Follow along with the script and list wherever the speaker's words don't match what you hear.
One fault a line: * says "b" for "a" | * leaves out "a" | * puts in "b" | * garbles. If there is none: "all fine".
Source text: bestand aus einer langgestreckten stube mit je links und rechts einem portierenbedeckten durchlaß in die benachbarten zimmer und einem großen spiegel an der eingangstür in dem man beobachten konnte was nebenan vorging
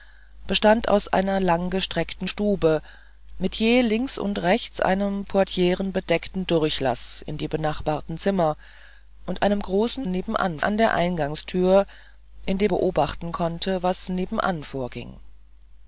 * says "nebenan" for "spiegel"
* leaves out "man"